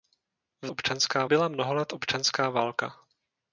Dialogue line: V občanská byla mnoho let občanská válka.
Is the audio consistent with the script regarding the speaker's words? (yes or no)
yes